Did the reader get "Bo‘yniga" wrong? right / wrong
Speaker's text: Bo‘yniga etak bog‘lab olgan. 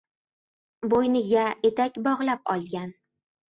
right